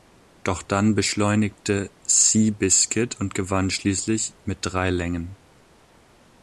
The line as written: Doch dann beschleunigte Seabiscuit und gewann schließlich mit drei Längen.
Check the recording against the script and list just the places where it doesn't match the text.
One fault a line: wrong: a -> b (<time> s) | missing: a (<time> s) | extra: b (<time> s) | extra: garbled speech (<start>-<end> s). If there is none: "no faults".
no faults